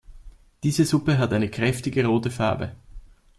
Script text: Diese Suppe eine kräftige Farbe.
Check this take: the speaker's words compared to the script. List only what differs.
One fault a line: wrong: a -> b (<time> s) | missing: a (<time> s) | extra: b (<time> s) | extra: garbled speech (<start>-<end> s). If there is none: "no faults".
extra: hat (1.2 s)
extra: rote (2.1 s)